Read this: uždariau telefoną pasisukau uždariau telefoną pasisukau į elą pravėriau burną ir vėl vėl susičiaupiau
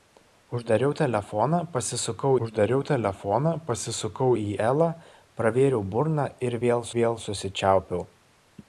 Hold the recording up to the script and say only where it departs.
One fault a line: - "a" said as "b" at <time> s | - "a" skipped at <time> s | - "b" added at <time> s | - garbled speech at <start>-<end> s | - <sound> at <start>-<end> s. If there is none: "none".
none